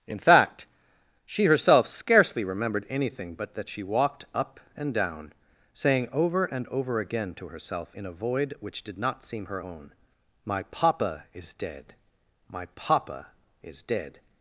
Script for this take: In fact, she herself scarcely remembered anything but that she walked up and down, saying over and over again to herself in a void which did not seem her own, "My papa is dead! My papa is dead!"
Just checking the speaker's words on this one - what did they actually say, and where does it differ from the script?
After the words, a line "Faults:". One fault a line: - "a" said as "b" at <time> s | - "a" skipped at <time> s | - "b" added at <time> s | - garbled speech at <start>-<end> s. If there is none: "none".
In fact, she herself scarcely remembered anything but that she walked up and down, saying over and over again to herself in a void which did not seem her own, "My papa is dead! My papa is dead!"
Faults:
none